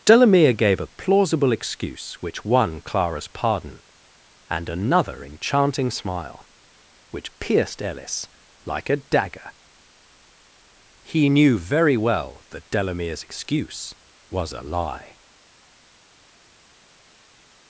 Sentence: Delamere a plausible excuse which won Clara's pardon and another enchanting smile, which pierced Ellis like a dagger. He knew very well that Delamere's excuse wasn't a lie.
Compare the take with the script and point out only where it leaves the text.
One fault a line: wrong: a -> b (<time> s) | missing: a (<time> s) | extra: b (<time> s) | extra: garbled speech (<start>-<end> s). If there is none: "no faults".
extra: gave (0.5 s)
wrong: wasn't -> was (14.3 s)